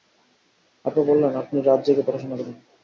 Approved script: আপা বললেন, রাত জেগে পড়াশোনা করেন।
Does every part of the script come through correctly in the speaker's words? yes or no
no